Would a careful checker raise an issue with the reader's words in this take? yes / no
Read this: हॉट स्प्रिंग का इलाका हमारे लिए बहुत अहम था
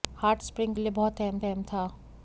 yes